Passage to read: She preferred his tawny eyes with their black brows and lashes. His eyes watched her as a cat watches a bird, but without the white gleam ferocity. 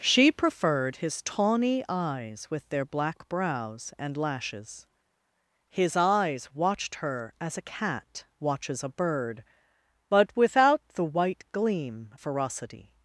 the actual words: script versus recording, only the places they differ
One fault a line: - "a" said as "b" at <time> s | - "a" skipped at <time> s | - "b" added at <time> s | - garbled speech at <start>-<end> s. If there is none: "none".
none